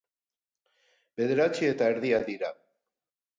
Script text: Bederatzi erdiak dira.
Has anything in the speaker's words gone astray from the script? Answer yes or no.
yes